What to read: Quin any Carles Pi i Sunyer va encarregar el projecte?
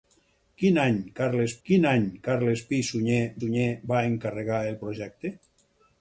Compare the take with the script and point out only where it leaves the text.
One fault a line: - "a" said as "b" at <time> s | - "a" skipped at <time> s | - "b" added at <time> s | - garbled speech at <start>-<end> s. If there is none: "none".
- "quin any Carles" added at 1.7 s
- "Sunyer" added at 3.4 s